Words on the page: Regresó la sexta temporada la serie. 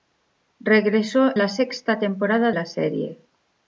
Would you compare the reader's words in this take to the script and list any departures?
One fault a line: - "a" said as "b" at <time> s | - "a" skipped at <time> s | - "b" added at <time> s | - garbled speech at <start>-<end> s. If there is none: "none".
none